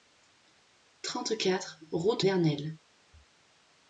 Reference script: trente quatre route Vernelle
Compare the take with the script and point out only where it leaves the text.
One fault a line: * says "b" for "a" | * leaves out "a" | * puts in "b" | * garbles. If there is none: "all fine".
all fine